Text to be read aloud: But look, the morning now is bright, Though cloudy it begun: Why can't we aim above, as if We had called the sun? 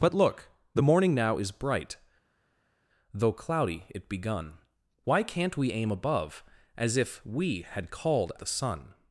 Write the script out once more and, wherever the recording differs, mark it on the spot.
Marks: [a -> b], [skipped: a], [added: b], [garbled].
But look, the morning now is bright, Though cloudy it begun: Why can't we aim above, as if We had called the sun?